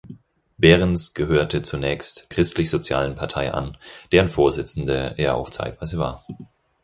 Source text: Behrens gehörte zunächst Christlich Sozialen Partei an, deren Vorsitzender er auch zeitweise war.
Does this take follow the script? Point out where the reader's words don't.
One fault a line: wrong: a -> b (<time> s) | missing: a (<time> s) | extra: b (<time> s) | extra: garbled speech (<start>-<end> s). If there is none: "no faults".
no faults